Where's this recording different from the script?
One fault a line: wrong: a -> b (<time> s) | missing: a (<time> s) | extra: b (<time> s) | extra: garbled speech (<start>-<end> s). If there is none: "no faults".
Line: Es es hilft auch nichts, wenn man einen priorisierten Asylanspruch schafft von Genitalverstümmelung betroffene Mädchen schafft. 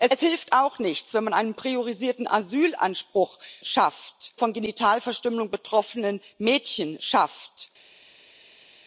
no faults